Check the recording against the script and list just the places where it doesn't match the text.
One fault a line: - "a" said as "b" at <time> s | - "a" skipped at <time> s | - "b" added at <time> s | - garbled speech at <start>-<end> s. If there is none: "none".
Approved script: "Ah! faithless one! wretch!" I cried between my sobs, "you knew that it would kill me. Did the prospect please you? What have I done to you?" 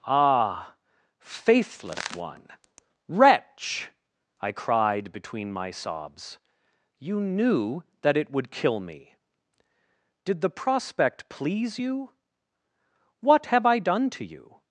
none